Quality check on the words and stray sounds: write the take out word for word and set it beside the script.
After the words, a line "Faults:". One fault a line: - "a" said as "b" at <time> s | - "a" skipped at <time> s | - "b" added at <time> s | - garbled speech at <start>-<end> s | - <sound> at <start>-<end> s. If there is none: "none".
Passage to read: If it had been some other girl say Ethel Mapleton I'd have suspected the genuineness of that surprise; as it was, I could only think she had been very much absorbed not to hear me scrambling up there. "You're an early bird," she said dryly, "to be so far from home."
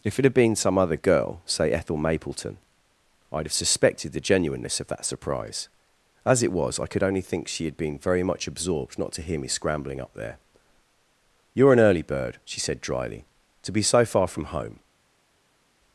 If it had been some other girl say Ethel Mapleton I'd have suspected the genuineness of that surprise; as it was, I could only think she had been very much absorbed not to hear me scrambling up there. "You're an early bird," she said dryly, "to be so far from home."
Faults:
none